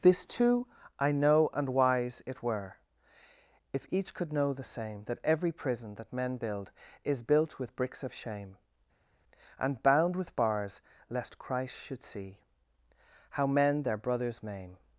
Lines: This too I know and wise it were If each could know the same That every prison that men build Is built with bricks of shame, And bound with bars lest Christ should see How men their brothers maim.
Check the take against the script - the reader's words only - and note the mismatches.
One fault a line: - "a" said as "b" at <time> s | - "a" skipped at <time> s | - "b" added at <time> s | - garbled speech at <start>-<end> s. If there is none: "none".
none